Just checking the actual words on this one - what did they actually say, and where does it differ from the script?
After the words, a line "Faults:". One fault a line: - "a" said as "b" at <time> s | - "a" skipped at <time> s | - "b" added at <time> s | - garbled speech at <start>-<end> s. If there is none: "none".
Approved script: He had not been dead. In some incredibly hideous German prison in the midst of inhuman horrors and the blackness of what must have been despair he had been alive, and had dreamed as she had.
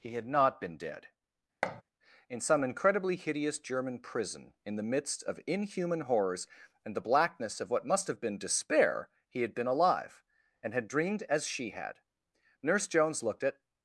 He had not been dead. In some incredibly hideous German prison in the midst of inhuman horrors and the blackness of what must have been despair he had been alive, and had dreamed as she had. Nurse Jones looked at
Faults:
- "Nurse Jones looked at" added at 12.6 s